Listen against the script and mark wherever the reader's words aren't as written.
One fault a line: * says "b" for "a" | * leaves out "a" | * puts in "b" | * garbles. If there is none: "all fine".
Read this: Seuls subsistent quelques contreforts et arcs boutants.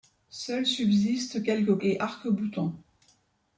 * leaves out "contreforts"